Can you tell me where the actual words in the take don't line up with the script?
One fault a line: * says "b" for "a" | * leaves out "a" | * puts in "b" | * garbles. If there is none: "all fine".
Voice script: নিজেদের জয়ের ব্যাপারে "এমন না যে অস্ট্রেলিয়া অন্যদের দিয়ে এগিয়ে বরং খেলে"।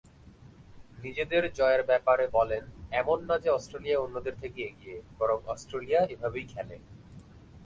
* puts in "বলেন"
* says "থেকে" for "দিয়ে"
* puts in "অস্ট্রেলিয়া এভাবেই"